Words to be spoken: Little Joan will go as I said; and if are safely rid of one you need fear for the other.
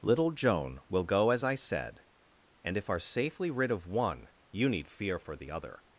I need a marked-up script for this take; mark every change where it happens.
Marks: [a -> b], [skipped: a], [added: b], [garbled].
Little Joan will go as I said; and if are safely rid of one you need fear for the other.